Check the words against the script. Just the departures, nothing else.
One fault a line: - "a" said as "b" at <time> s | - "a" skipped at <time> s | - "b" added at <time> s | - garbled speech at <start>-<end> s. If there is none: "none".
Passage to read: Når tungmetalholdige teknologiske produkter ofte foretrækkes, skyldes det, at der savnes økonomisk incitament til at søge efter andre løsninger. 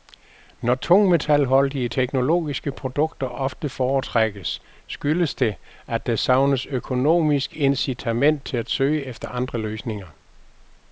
none